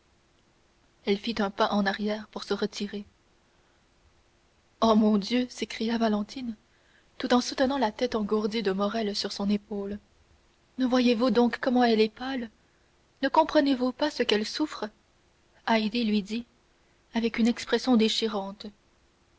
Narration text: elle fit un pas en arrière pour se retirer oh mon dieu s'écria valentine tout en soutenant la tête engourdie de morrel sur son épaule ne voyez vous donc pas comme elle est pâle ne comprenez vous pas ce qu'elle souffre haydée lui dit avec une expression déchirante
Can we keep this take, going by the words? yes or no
no